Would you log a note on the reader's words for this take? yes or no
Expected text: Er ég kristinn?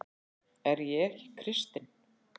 yes